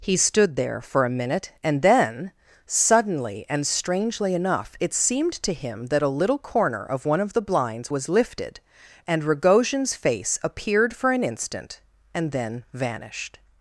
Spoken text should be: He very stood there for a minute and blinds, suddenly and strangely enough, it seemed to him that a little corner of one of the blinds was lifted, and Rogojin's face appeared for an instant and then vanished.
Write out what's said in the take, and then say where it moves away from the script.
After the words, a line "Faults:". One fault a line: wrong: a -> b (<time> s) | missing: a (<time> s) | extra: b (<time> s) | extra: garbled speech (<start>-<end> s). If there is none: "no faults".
He stood there for a minute and then, suddenly and strangely enough, it seemed to him that a little corner of one of the blinds was lifted, and Rogojin's face appeared for an instant and then vanished.
Faults:
missing: very (0.2 s)
wrong: blinds -> then (1.8 s)